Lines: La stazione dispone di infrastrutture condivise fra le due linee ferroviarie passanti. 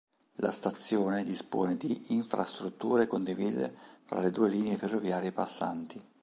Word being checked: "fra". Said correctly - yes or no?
yes